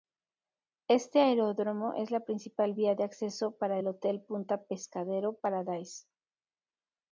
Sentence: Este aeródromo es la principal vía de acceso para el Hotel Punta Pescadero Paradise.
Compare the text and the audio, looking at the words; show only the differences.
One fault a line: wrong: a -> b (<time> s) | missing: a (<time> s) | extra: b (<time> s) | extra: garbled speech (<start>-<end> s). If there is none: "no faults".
no faults